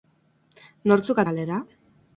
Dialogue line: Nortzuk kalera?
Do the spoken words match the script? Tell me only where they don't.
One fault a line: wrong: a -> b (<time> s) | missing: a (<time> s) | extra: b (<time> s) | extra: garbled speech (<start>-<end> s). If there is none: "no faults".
no faults